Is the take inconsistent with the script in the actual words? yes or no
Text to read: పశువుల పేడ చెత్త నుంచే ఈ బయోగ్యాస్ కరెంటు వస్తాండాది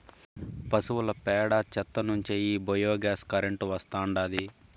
no